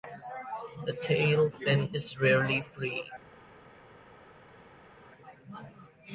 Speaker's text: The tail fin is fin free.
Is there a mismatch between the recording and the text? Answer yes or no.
yes